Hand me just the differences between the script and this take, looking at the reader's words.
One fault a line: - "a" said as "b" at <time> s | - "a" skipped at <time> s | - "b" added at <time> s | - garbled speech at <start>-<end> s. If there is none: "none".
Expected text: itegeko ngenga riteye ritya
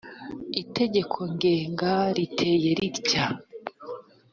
none